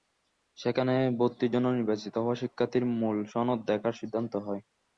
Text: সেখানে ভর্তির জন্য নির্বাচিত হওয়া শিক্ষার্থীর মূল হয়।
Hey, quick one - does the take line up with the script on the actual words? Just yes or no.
no